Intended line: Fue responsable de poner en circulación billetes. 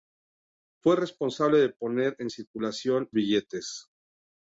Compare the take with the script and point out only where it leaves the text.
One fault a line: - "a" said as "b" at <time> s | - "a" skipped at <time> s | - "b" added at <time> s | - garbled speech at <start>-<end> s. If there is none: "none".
none